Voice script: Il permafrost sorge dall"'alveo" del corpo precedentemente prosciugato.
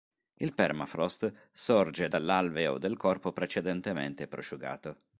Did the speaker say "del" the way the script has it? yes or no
yes